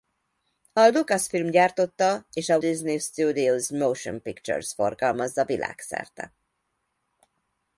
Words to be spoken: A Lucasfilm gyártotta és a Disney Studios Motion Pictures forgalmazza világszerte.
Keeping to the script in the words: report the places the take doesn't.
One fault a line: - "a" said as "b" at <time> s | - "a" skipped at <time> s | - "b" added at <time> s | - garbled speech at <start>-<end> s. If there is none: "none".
none